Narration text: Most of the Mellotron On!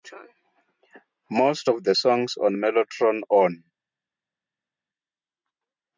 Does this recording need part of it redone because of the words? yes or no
yes